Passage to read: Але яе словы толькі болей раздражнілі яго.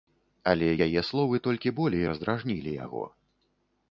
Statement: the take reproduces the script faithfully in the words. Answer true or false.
true